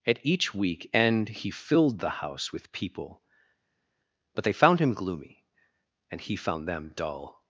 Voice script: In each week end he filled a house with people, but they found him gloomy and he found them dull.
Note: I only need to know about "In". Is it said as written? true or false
false